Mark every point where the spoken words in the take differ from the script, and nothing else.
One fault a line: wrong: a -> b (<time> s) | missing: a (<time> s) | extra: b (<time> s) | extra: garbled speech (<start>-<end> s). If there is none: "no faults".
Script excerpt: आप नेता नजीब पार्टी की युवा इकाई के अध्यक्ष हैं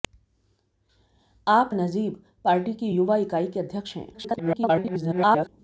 missing: नेता (1.8 s)
extra: garbled speech (4.1-5.5 s)